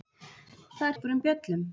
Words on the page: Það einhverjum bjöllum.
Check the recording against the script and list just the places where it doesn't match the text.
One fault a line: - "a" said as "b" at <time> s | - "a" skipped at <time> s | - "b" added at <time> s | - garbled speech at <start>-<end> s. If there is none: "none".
none